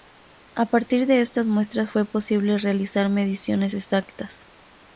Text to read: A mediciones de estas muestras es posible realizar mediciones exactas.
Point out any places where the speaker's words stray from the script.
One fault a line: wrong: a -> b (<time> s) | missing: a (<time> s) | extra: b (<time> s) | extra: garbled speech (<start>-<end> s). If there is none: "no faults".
wrong: mediciones -> partir (0.7 s)
wrong: es -> fue (1.9 s)